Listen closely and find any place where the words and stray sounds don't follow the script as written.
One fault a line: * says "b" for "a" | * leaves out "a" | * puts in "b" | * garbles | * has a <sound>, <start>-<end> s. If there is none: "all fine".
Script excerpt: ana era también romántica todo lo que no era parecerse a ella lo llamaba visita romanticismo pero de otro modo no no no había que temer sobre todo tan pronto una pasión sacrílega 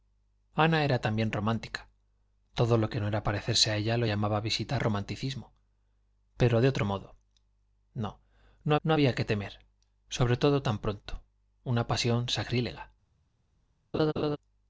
* has a laugh, 13.9-14.4 s